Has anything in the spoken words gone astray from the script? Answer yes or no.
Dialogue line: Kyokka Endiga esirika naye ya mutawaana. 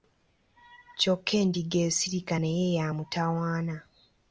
no